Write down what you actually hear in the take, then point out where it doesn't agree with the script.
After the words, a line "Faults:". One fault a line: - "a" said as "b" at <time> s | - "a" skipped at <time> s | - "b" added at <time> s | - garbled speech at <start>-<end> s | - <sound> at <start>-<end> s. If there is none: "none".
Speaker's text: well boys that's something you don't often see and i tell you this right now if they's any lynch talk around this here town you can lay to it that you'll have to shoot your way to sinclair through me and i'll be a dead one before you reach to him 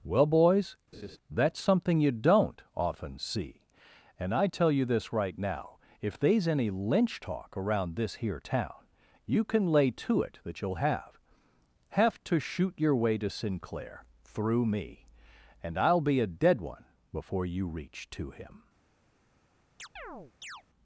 well boys that's something you don't often see and i tell you this right now if they's any lynch talk around this here town you can lay to it that you'll have have to shoot your way to sinclair through me and i'll be a dead one before you reach to him
Faults:
- laugh at 0.9-1.2 s
- "have" added at 11.9 s
- chirp at 19.8-20.6 s